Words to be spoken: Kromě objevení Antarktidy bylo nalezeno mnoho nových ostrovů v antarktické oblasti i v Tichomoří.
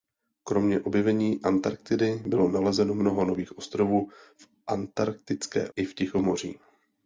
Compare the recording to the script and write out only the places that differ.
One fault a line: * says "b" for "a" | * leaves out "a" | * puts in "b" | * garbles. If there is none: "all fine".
* leaves out "oblasti"